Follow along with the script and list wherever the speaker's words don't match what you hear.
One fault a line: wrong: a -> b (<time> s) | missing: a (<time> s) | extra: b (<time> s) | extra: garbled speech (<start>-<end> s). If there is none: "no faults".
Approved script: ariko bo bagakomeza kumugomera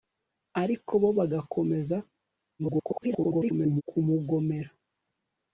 extra: garbled speech (2.6-3.8 s)